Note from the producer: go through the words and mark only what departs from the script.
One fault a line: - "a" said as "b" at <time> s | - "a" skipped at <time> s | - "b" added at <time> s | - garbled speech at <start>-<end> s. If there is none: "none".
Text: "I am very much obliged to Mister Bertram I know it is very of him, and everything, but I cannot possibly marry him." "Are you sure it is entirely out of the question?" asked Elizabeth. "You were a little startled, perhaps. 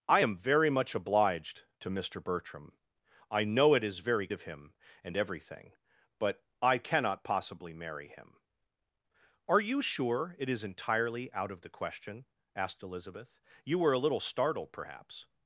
none